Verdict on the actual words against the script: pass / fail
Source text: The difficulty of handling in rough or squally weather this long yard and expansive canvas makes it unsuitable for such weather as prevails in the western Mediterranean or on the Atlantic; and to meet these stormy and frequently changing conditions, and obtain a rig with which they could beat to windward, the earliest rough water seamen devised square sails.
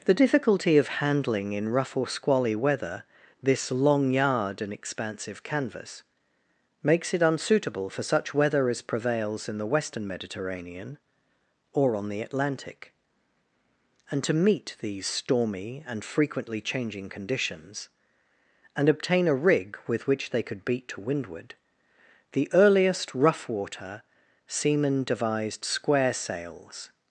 pass